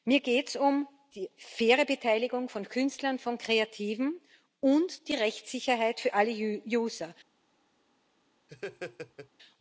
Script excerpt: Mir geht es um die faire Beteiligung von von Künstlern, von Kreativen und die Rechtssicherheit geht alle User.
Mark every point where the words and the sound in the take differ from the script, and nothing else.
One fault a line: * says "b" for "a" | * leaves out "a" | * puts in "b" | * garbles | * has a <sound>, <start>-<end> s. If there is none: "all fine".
* leaves out "von"
* says "für" for "geht"
* has a laugh, 8.5-9.3 s